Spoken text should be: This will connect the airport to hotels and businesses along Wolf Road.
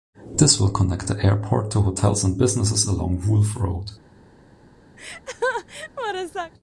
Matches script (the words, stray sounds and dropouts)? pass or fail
fail